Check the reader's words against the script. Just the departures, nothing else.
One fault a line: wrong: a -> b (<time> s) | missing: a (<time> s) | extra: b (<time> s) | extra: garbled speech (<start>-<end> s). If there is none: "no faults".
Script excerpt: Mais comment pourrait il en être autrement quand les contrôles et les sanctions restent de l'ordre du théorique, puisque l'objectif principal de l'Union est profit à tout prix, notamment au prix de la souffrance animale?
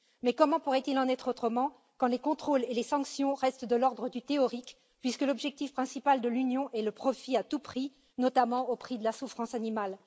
extra: le (6.8 s)